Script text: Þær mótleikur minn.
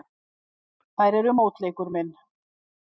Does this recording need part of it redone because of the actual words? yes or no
yes